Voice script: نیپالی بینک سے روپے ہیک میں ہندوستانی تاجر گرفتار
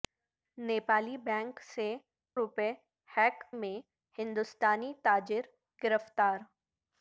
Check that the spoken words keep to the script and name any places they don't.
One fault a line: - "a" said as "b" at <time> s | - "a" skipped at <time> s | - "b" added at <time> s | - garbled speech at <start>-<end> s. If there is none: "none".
none